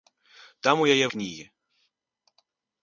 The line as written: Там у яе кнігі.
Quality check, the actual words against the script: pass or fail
pass